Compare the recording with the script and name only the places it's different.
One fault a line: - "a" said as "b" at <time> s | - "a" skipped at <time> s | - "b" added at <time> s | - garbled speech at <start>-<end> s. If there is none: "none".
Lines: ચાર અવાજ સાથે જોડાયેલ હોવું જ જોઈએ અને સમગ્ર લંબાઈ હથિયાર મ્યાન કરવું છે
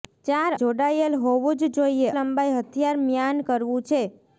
- "અવાજ સાથે" skipped at 0.5 s
- "અને સમગ્ર" skipped at 2.1 s